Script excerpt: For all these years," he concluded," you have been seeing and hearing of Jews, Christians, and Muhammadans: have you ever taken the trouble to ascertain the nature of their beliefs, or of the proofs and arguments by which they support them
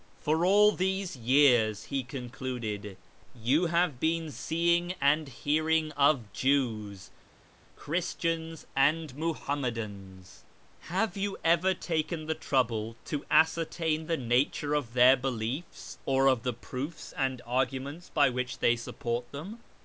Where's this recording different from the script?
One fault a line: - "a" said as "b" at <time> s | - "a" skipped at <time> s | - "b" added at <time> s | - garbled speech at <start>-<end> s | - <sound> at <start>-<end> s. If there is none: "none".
none